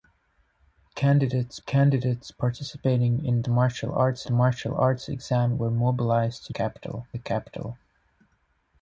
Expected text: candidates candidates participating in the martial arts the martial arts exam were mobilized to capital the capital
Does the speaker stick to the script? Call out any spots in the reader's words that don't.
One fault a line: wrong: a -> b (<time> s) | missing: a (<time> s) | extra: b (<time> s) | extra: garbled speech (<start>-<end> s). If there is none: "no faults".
no faults